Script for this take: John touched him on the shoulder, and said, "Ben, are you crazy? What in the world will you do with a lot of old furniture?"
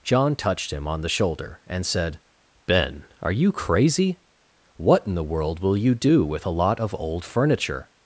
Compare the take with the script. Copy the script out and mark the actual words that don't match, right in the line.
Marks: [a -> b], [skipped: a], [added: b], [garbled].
John touched him on the shoulder, and said, "Ben, are you crazy? What in the world will you do with a lot of old furniture?"